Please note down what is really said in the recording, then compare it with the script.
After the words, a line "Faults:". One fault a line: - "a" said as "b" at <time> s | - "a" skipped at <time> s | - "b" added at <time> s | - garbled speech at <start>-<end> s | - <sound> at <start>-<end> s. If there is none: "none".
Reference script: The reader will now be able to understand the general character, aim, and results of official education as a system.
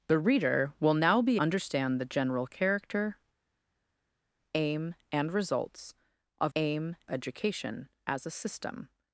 The reader will now be understand the general character, aim, and results of aim education as a system.
Faults:
- "able to" skipped at 1.4 s
- "official" said as "aim" at 6.6 s